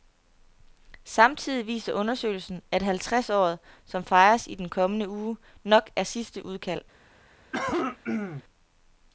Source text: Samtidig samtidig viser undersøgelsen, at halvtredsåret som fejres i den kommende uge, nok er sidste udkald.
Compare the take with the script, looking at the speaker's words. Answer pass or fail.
fail